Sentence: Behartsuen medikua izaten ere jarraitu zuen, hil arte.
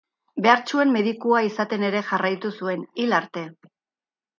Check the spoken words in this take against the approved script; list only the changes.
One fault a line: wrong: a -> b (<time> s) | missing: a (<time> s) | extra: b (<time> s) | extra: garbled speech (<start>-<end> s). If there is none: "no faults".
no faults